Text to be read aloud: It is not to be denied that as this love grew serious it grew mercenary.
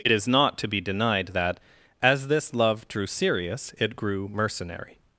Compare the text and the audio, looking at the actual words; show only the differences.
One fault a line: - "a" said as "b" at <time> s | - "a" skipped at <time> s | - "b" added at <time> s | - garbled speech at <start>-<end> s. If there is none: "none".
- "grew" said as "drew" at 2.9 s